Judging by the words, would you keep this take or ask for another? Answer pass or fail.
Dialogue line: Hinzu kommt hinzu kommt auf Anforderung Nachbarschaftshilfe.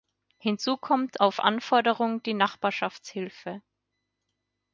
fail